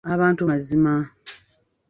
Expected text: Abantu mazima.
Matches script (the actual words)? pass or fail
pass